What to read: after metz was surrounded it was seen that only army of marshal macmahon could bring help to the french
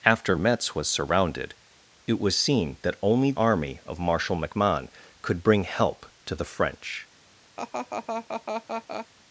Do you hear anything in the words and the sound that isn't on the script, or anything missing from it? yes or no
yes